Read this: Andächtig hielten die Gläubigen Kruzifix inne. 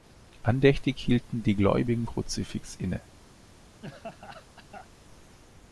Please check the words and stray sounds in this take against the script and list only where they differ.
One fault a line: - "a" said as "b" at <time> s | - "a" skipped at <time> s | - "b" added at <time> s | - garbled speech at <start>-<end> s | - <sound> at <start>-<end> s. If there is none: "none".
- laugh at 3.8-4.9 s